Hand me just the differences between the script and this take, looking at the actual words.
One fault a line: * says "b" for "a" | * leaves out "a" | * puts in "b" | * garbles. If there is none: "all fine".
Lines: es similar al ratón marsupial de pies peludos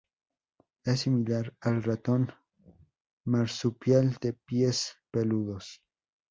all fine